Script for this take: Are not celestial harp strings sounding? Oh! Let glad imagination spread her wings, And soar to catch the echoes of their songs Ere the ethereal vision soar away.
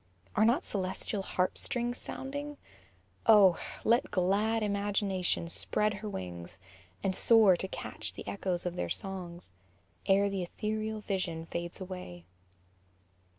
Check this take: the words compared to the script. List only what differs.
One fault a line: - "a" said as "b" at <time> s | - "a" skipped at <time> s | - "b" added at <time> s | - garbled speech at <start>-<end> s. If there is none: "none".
- "soar" said as "fades" at 11.5 s